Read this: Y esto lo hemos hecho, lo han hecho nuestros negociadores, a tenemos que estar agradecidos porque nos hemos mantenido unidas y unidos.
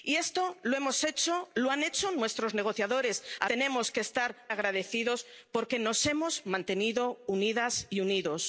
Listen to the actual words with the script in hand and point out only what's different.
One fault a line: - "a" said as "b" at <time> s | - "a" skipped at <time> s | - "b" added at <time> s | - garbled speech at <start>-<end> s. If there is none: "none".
none